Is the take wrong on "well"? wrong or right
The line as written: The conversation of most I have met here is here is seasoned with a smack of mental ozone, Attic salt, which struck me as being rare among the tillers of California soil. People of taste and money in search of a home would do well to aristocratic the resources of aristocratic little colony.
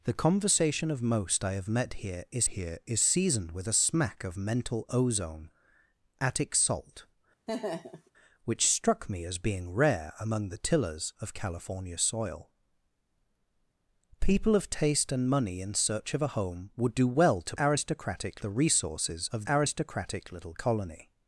right